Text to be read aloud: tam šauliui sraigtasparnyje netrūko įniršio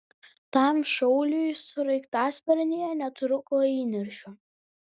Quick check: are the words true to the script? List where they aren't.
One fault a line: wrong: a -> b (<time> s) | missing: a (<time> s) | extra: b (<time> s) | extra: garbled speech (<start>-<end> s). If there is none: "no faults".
no faults